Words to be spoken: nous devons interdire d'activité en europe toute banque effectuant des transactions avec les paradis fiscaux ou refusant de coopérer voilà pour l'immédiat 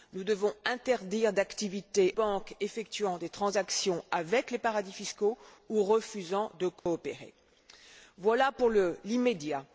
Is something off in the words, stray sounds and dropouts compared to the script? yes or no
yes